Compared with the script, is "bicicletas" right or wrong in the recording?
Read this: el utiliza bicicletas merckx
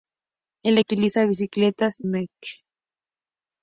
right